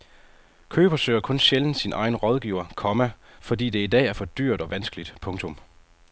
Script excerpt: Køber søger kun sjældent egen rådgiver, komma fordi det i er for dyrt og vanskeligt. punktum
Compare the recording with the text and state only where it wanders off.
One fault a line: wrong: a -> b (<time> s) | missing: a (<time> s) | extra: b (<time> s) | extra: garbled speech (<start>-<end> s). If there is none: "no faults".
extra: sin (1.8 s)
extra: dag (3.9 s)